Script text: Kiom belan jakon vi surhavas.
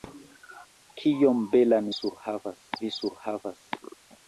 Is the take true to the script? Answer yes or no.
no